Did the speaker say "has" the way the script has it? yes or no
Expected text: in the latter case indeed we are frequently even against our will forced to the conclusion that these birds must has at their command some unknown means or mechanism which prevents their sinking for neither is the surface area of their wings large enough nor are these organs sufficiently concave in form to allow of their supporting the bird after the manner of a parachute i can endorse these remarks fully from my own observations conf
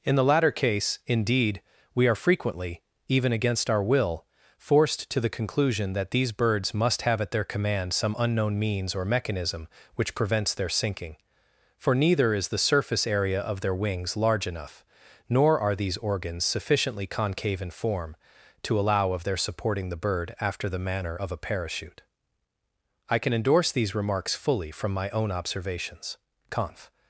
no